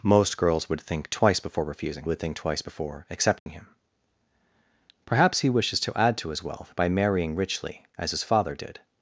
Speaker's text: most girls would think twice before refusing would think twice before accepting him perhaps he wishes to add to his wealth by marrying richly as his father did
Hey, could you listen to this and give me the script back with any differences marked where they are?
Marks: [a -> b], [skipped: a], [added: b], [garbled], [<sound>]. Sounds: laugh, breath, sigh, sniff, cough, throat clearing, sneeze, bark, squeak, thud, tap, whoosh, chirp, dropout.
most girls would think twice before refusing would think twice before accepting [dropout] him perhaps he wishes to add to his wealth by marrying richly as his father did